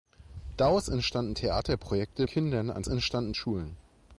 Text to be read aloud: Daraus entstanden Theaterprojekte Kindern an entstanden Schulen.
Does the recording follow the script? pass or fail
pass